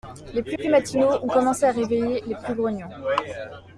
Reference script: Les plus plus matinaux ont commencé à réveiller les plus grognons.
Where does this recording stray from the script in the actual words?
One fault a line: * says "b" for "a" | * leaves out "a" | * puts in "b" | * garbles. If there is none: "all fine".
all fine